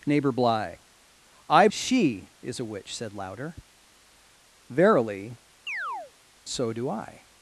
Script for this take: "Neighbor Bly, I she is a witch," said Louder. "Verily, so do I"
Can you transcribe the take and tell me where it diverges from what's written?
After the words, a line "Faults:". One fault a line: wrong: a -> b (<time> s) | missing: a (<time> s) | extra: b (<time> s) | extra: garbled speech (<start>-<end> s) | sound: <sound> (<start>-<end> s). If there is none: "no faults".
"Neighbor Bly, I she is a witch," said Louder. "Verily, so do I"
Faults:
sound: chirp (5.7-6.1 s)